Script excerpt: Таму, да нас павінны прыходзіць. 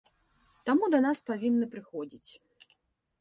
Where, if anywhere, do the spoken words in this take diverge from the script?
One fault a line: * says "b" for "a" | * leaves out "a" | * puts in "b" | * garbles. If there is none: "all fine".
all fine